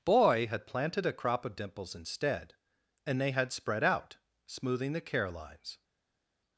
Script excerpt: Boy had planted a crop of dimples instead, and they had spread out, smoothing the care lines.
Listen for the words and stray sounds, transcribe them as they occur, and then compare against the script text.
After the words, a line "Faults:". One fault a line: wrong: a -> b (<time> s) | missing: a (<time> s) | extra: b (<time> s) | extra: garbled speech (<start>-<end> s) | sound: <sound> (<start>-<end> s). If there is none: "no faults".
Boy had planted a crop of dimples instead, and they had spread out, smoothing the care lines.
Faults:
no faults